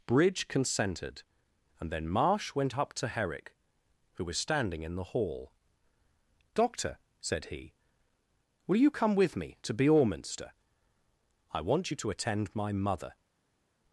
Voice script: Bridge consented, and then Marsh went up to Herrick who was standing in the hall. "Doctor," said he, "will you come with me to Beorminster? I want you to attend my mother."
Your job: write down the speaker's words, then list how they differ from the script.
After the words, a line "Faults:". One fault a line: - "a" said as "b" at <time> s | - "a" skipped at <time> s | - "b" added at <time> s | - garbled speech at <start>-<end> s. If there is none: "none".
Bridge consented, and then Marsh went up to Herrick who was standing in the hall. "Doctor," said he, "will you come with me to Beorminster? I want you to attend my mother."
Faults:
none